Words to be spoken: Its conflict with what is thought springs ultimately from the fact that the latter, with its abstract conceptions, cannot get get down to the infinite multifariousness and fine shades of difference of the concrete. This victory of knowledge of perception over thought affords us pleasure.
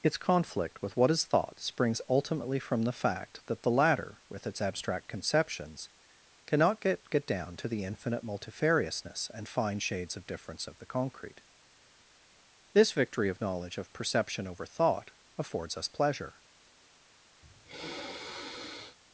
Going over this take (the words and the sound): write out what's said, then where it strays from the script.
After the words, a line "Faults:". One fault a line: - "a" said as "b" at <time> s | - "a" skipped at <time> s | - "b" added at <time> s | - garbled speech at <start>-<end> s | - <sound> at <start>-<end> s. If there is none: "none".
Its conflict with what is thought springs ultimately from the fact that the latter, with its abstract conceptions, cannot get get down to the infinite multifariousness and fine shades of difference of the concrete. This victory of knowledge of perception over thought affords us pleasure.
Faults:
- sniff at 17.4-19.0 s